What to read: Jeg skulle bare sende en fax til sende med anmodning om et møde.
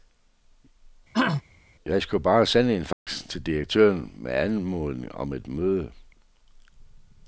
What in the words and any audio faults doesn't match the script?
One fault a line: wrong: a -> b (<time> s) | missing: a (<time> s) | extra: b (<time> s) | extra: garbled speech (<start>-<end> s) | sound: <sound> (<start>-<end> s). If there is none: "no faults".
sound: throat clearing (1.1-1.4 s)
sound: dropout (2.9-3.1 s)
wrong: sende -> direktøren (3.4 s)